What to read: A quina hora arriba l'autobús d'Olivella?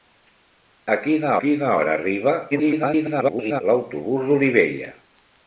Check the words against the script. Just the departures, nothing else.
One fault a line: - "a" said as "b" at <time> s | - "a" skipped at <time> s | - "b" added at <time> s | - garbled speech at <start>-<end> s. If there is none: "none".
- "quina" added at 1.4 s
- garbled speech at 2.5-3.6 s